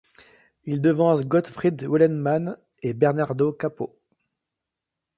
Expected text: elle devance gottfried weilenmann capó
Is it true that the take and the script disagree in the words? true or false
true